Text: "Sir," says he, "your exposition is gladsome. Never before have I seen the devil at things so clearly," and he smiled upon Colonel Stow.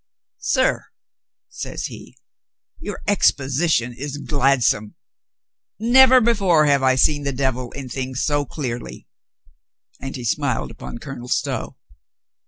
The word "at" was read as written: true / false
false